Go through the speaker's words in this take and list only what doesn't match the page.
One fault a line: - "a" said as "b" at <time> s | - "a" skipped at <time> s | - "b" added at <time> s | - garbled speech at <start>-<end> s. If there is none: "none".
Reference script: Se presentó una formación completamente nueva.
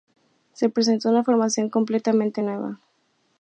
none